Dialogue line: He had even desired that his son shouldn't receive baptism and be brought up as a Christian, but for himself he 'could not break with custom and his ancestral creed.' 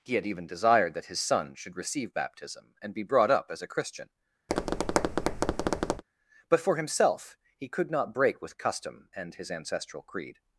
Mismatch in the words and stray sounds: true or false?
true